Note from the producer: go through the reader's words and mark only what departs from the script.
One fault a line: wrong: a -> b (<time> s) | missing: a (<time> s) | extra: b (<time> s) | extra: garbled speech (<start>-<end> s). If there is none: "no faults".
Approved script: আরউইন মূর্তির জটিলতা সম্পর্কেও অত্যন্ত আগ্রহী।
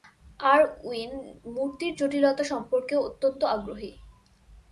no faults